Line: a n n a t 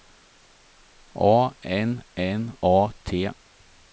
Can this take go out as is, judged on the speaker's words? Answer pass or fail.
pass